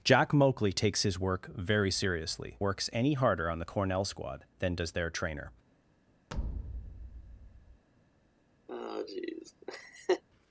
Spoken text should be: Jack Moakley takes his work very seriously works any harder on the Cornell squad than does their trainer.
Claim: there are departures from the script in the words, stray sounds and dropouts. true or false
true